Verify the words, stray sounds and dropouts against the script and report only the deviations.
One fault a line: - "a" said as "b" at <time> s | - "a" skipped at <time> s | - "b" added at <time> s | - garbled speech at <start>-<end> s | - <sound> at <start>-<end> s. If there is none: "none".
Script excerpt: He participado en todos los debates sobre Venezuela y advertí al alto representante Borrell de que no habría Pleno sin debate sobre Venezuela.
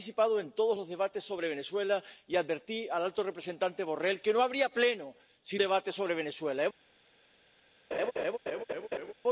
- laugh at 7.9-9.1 s